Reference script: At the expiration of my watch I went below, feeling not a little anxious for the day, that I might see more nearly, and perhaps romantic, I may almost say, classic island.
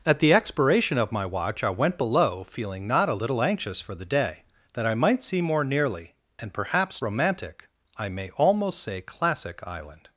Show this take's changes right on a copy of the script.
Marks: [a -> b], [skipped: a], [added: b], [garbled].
At the expiration of my watch I went below, feeling not a little anxious for the day, that I might see more nearly, and perhaps romantic, I may almost say, classic island.